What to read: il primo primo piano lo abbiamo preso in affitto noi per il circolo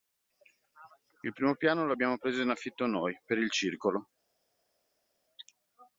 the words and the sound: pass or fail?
fail